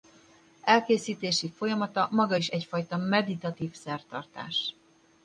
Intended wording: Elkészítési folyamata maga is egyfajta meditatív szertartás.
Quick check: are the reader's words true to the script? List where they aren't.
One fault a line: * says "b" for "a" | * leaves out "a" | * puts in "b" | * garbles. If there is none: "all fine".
all fine